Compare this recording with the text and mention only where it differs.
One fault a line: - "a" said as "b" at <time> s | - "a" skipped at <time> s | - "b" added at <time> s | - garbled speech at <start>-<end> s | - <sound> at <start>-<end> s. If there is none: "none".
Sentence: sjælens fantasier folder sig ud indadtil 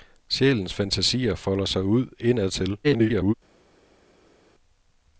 - garbled speech at 2.8-3.3 s